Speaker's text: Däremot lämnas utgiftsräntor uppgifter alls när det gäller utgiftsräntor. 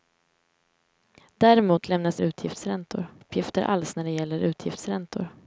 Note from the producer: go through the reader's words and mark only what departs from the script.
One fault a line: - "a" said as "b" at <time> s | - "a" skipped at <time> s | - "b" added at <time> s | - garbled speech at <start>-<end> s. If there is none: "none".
none